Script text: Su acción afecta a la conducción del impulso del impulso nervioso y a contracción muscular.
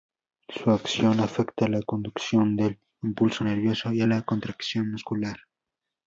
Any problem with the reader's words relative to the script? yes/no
yes